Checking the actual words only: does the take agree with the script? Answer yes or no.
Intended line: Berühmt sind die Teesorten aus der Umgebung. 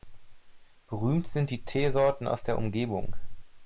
yes